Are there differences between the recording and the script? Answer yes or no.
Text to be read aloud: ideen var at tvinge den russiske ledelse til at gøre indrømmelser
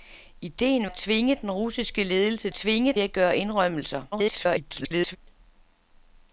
yes